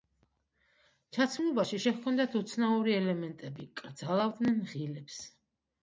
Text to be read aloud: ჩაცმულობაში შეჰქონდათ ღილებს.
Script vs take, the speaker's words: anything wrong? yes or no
yes